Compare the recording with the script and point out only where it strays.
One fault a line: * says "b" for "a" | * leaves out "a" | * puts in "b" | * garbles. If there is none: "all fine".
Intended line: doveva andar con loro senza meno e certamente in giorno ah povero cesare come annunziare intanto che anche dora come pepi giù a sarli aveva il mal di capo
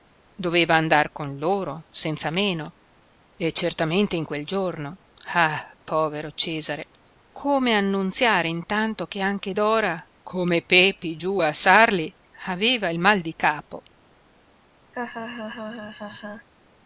* puts in "quel"